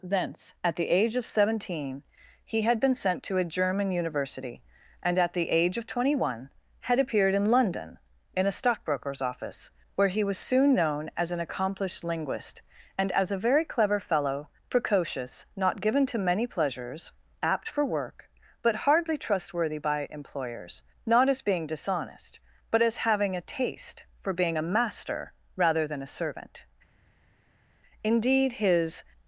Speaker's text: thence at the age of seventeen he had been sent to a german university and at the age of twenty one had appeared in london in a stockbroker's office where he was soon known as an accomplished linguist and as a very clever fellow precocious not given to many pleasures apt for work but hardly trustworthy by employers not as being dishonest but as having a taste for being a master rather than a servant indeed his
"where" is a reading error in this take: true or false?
false